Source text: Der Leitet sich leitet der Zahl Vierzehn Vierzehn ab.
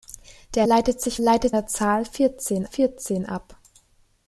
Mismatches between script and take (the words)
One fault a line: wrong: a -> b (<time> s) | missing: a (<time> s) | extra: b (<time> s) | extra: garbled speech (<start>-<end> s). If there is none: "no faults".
no faults